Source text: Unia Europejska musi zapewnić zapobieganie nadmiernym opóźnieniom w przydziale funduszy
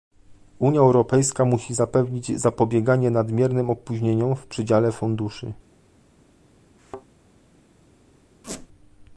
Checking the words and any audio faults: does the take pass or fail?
fail